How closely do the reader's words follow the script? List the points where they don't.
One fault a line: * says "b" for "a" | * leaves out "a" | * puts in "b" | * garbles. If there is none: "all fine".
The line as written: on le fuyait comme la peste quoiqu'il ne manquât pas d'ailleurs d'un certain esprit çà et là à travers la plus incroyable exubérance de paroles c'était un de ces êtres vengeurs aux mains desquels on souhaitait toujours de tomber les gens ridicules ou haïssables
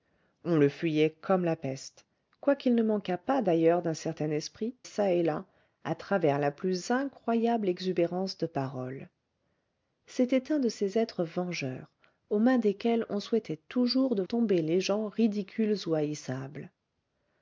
all fine